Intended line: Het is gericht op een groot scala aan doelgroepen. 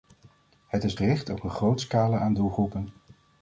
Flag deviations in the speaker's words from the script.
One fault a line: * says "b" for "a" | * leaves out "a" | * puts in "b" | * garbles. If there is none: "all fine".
all fine